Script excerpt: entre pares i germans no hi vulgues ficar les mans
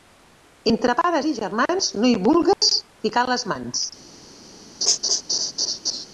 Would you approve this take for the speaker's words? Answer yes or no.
yes